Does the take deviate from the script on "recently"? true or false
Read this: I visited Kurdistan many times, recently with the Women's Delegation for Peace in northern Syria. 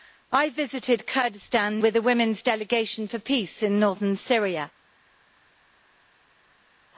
true